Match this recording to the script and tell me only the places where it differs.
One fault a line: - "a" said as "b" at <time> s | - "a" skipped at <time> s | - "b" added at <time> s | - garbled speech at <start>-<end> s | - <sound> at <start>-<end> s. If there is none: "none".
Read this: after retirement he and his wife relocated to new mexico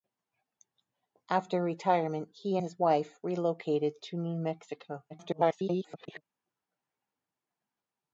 - "and" skipped at 2.6 s
- garbled speech at 5.1-6.2 s